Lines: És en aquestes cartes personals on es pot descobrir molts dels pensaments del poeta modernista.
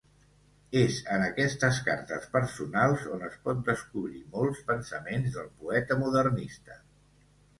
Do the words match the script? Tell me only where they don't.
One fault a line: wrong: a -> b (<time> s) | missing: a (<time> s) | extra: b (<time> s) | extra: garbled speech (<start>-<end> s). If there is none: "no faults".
missing: dels (4.7 s)